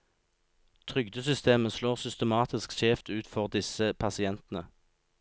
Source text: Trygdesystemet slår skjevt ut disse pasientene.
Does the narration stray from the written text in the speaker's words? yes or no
yes